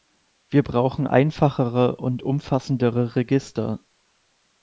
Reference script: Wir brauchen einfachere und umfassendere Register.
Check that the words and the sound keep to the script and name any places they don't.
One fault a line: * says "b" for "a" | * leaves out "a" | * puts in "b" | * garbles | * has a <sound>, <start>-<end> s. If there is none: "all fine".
all fine